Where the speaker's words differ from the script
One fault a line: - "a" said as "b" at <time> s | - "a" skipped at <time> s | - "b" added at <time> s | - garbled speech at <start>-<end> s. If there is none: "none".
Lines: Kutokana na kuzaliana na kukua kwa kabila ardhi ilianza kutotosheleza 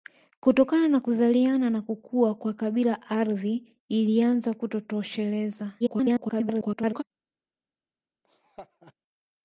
- garbled speech at 5.8-7.0 s